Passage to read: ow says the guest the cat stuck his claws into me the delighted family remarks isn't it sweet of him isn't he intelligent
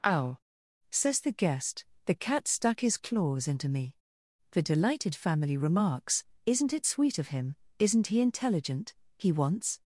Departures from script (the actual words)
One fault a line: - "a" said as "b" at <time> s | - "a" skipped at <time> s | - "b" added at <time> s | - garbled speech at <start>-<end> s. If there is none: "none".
- "he wants" added at 9.2 s